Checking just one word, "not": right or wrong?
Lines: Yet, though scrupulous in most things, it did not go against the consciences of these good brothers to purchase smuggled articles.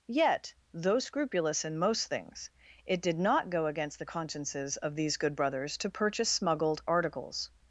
right